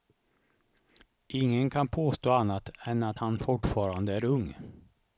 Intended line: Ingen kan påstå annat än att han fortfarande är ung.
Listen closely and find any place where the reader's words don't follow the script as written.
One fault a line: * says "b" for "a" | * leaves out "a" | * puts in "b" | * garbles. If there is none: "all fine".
all fine